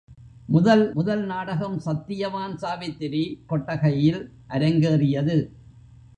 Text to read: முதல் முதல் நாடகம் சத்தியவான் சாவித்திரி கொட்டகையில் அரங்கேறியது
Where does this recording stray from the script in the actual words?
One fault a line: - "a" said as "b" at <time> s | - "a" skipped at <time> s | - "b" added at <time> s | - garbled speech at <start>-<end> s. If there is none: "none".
none